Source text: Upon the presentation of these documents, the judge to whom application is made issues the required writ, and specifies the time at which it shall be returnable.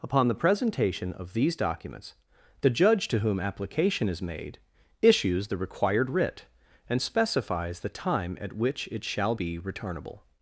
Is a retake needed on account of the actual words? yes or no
no